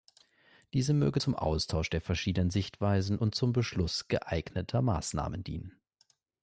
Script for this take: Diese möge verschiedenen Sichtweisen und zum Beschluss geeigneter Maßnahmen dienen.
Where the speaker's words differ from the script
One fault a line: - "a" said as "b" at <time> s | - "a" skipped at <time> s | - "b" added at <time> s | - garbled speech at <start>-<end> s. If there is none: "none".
- "zum Austausch der" added at 1.2 s